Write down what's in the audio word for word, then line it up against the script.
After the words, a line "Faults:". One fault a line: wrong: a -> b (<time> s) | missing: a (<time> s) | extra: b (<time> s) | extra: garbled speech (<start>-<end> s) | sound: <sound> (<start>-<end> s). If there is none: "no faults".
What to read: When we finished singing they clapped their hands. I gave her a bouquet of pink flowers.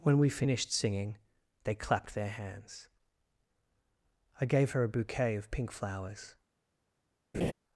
When we finished singing they clapped their hands. I gave her a bouquet of pink flowers.
Faults:
sound: laugh (7.3-7.5 s)